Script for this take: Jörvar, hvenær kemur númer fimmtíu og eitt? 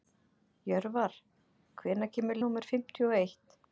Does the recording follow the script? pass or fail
pass